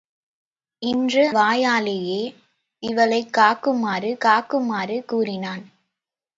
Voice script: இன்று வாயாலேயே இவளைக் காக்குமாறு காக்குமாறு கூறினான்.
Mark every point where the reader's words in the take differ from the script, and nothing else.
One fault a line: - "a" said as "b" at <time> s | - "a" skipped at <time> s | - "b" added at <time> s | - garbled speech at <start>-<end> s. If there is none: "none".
none